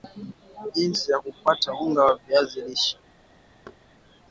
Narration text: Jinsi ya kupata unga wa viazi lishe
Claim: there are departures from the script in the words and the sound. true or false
true